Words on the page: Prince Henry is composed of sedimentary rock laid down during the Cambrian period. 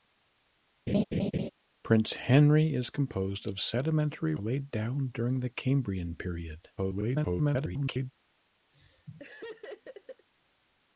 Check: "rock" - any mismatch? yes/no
yes